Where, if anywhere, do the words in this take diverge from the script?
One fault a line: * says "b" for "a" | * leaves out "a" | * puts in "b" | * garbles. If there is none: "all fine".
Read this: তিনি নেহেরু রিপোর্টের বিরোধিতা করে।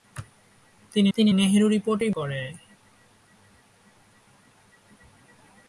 * puts in "তিনি"
* leaves out "বিরোধিতা"